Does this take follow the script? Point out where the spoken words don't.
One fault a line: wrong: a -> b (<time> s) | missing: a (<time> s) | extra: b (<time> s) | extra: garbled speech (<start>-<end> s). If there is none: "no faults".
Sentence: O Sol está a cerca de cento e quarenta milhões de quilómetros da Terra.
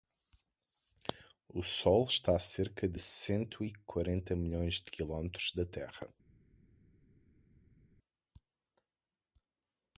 no faults